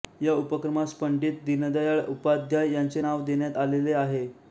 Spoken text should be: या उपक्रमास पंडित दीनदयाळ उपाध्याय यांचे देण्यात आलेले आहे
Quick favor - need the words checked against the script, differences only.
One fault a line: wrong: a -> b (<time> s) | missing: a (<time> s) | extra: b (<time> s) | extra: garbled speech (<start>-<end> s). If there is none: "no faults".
extra: नाव (3.0 s)